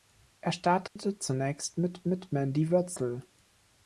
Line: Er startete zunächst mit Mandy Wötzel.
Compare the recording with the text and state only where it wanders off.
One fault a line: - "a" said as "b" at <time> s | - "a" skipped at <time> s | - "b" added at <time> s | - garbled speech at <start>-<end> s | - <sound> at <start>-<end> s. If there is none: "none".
- dropout at 0.9-1.0 s
- "mit" added at 2.1 s